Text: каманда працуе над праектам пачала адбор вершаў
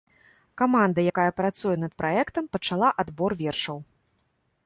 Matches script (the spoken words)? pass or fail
fail